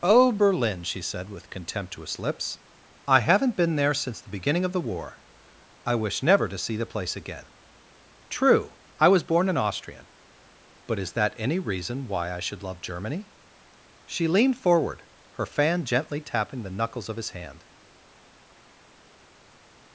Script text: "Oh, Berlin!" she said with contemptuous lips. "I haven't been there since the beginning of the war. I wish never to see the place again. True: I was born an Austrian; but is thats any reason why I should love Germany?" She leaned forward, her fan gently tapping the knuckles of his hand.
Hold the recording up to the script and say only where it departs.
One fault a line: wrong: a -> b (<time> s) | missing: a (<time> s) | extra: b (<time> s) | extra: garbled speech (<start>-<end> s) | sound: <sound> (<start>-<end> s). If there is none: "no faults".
wrong: thats -> that (11.1 s)